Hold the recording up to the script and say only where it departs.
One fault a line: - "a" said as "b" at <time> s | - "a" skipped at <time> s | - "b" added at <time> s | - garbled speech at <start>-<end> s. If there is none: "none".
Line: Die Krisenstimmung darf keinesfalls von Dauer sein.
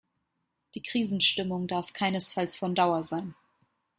none